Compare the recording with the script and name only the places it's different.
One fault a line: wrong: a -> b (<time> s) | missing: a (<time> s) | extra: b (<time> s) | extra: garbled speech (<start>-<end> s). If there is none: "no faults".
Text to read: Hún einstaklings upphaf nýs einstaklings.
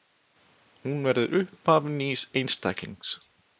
wrong: einstaklings -> verður (1.1 s)